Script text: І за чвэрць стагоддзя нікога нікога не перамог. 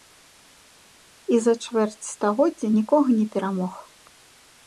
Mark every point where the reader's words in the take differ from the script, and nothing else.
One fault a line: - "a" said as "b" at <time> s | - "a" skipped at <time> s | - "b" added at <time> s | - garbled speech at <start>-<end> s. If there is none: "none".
- "нікога" skipped at 3.1 s